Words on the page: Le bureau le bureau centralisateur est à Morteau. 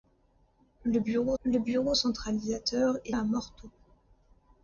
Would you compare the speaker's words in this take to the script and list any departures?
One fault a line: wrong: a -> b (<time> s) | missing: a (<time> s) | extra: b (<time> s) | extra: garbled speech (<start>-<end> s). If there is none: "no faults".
no faults